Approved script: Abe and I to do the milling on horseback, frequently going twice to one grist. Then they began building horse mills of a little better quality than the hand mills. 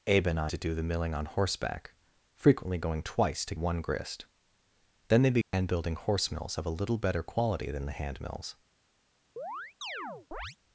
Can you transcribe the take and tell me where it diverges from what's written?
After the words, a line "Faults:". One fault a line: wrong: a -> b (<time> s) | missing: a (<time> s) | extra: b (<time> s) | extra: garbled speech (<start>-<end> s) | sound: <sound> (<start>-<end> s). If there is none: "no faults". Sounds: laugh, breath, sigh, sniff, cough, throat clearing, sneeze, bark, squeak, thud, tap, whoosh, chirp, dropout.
Abe and I to do the milling on horseback, frequently going twice to one grist. Then they began building horse mills of a little better quality than the hand mills.
Faults:
sound: dropout (5.4-5.5 s)
sound: chirp (9.4-10.6 s)